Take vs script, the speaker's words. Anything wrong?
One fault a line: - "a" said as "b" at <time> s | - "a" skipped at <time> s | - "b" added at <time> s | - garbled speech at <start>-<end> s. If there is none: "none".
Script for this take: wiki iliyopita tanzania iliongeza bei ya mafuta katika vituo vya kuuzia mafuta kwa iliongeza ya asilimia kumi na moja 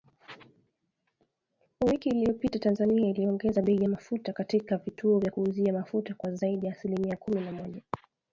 - "iliongeza" said as "zaidi" at 6.3 s